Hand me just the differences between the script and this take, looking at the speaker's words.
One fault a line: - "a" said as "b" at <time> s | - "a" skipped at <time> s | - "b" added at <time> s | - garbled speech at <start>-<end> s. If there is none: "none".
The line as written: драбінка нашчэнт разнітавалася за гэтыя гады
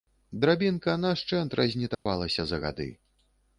- "гэтыя" skipped at 2.6 s